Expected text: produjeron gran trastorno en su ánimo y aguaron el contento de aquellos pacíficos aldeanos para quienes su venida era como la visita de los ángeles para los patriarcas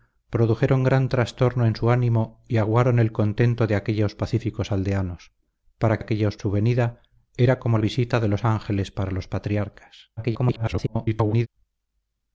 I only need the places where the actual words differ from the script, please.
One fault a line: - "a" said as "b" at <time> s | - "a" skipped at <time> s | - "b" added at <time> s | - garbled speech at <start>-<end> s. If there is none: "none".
- "quienes" said as "aquellos" at 6.0 s
- "la" skipped at 7.8 s
- garbled speech at 10.2-11.5 s